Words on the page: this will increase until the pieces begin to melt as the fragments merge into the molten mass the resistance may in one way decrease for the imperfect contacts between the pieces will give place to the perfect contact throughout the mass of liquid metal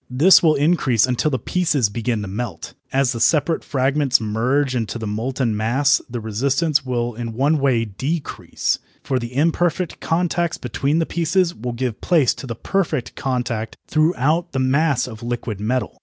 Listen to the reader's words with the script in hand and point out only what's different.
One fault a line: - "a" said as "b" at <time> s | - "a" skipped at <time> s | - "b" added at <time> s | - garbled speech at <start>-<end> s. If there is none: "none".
- "separate" added at 3.2 s
- "may" said as "will" at 6.8 s